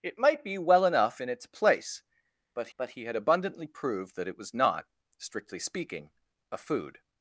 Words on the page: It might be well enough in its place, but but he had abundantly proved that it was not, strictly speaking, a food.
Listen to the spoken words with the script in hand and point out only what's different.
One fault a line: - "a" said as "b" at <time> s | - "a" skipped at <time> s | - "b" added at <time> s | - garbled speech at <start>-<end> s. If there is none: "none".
none